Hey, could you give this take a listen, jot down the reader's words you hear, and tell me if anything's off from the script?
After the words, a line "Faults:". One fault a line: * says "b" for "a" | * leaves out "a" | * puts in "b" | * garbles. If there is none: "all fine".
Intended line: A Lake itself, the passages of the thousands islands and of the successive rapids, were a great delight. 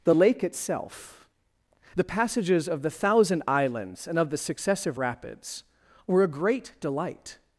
The Lake itself, the passages of the thousand islands and of the successive rapids, were a great delight.
Faults:
* says "The" for "A"
* says "thousand" for "thousands"